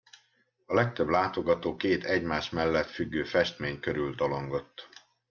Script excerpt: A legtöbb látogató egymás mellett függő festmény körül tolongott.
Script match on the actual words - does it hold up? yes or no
no